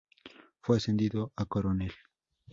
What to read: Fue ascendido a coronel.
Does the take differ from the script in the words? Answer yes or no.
no